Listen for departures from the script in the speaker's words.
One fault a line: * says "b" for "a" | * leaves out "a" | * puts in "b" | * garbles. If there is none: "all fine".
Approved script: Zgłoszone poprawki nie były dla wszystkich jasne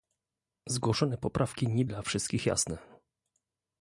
* leaves out "były"